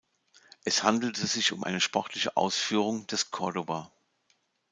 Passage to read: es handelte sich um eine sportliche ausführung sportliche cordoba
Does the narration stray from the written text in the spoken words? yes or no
yes